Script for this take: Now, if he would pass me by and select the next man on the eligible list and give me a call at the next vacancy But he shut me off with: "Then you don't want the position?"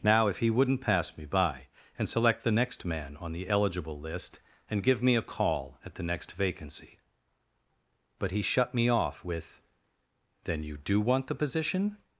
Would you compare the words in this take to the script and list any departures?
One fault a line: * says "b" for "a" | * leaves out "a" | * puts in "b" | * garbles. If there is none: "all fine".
* says "wouldn't" for "would"
* says "do" for "don't"